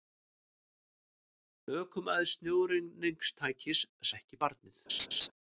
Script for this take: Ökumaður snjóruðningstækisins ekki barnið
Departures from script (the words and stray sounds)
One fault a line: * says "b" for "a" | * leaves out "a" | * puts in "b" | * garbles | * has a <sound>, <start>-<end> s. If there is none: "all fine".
* has a laugh, 4.9-5.3 s